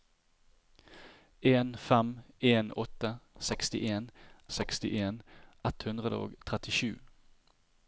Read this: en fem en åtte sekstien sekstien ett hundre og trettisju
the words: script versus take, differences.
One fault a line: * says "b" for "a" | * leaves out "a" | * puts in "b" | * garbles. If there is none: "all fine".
all fine